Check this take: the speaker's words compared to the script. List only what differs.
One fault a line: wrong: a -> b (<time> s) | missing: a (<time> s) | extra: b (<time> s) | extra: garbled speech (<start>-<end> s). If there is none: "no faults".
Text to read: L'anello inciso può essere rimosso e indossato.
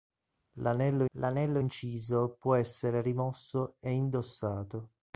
extra: l'anello (1.1 s)